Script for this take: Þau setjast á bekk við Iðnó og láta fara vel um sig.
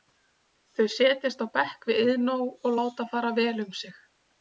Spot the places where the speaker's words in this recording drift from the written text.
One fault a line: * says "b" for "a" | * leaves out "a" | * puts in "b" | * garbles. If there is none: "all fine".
all fine